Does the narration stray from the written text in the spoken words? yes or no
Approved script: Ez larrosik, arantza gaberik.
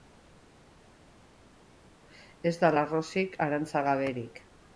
yes